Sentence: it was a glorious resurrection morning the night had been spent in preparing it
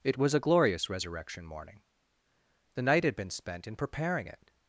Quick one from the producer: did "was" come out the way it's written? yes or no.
yes